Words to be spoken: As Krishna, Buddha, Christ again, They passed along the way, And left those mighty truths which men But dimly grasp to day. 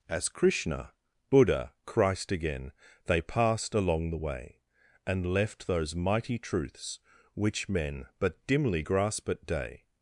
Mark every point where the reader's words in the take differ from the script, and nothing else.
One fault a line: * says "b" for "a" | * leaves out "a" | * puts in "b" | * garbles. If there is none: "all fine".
* says "at" for "to"